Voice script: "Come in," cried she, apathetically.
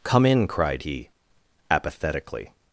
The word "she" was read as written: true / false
false